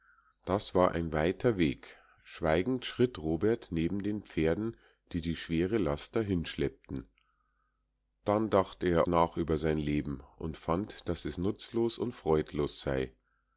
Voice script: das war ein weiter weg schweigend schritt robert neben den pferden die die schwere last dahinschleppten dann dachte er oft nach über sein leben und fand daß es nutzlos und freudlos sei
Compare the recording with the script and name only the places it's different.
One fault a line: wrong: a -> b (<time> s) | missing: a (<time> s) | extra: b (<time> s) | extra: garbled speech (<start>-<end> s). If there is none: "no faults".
missing: oft (9.1 s)